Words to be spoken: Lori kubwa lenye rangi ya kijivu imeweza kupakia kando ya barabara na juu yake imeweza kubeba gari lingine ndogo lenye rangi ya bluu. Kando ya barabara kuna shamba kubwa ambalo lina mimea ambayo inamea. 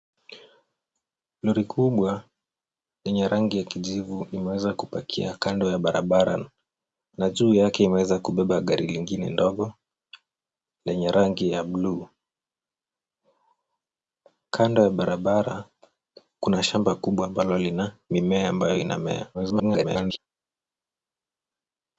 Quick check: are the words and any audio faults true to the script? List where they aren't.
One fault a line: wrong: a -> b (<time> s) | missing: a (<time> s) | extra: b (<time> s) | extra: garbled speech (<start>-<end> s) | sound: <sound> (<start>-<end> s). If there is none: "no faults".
extra: garbled speech (19.3-20.2 s)